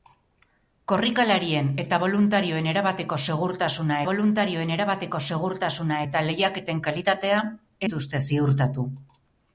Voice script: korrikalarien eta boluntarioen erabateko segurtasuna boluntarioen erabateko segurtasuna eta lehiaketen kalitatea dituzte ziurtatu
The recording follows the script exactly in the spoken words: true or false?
true